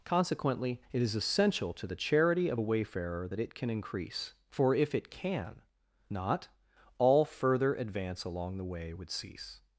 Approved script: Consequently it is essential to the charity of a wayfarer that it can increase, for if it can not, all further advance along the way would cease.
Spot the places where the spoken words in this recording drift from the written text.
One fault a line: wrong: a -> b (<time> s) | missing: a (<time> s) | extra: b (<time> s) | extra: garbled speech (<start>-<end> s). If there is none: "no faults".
no faults